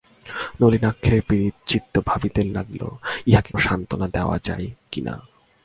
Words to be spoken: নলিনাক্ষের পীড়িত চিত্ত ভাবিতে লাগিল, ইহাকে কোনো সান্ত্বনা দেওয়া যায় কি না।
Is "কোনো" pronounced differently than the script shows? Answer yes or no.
yes